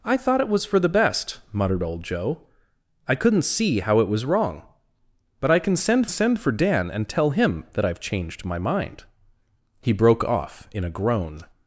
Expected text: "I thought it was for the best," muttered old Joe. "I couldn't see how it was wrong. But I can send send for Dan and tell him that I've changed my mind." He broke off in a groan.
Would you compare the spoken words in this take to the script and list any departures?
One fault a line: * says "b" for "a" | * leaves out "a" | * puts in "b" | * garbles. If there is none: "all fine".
all fine